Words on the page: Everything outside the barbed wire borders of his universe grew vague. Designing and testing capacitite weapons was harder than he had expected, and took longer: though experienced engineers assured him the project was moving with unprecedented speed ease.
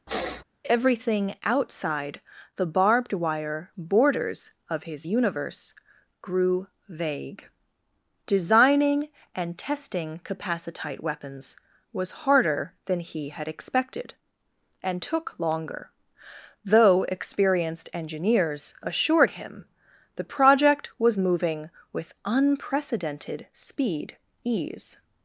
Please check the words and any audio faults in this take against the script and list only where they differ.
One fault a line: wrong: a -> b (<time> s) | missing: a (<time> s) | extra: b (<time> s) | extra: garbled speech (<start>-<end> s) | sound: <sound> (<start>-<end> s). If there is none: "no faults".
sound: sniff (0.1-0.4 s)